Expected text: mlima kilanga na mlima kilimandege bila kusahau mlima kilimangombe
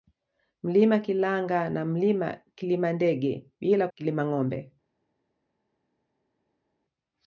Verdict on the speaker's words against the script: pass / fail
fail